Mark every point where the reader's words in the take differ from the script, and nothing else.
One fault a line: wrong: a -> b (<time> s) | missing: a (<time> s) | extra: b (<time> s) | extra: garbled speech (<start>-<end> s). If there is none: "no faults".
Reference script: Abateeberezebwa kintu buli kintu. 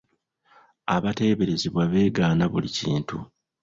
wrong: kintu -> beegaana (1.9 s)